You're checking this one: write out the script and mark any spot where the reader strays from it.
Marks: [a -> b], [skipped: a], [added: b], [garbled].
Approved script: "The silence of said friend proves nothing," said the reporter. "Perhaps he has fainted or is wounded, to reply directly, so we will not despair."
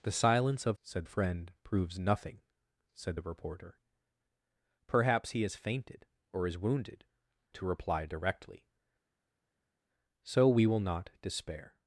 "The silence of said friend proves nothing," said the reporter. "Perhaps he has fainted or is wounded, to reply directly, so we will not despair."